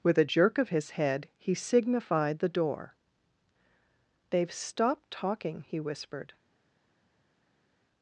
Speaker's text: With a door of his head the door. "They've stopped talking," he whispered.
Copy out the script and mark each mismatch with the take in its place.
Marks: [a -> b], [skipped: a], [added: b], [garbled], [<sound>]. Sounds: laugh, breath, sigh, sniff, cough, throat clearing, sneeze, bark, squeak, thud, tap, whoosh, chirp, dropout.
With a [door -> jerk] of his head [added: he signified] the door. "They've stopped talking," he whispered.